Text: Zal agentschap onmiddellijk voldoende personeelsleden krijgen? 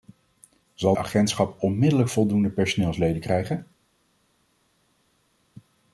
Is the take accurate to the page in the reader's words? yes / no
yes